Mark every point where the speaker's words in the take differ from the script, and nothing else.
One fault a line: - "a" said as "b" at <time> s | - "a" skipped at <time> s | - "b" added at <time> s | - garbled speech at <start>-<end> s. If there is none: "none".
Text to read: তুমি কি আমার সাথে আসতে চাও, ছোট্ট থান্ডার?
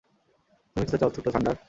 - "আমার সাথে" skipped at 0.9 s